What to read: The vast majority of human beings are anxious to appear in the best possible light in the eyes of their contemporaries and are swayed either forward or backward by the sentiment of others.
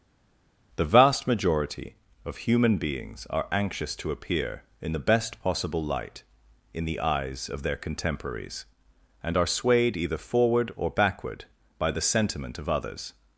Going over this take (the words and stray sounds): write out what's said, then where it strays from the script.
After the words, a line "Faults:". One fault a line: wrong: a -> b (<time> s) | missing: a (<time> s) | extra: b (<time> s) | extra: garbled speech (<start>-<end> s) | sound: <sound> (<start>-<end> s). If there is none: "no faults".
The vast majority of human beings are anxious to appear in the best possible light in the eyes of their contemporaries and are swayed either forward or backward by the sentiment of others.
Faults:
no faults